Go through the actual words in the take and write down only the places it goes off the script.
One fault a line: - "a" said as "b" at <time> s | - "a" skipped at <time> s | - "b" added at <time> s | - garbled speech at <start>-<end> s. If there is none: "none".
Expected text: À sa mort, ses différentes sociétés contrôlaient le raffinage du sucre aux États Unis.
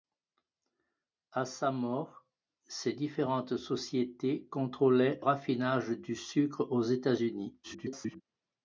- "le" skipped at 5.2 s
- garbled speech at 7.6-8.2 s